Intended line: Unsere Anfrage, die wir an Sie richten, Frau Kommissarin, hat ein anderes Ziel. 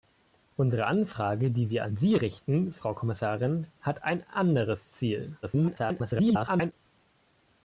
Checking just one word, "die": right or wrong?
right